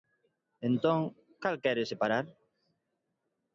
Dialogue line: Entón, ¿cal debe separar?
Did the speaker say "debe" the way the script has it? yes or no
no